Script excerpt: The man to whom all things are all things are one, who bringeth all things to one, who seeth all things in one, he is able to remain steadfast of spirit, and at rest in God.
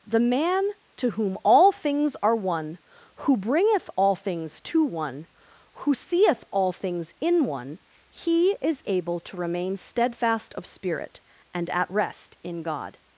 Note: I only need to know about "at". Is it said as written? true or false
true